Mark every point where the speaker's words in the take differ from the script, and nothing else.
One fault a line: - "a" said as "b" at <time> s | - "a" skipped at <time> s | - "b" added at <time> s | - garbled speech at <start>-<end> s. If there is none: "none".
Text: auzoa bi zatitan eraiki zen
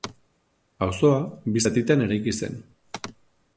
none